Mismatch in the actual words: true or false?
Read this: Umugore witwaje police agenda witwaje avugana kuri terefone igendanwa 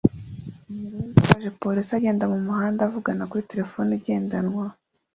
true